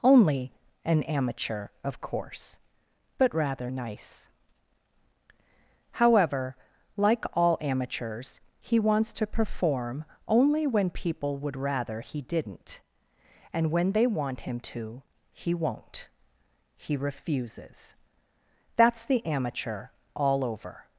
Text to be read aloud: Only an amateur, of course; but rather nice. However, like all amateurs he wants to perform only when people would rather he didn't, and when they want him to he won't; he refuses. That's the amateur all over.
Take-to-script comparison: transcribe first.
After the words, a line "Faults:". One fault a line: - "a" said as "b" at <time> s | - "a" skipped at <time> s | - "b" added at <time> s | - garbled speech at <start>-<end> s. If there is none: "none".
Only an amateur, of course; but rather nice. However, like all amateurs he wants to perform only when people would rather he didn't, and when they want him to he won't; he refuses. That's the amateur all over.
Faults:
none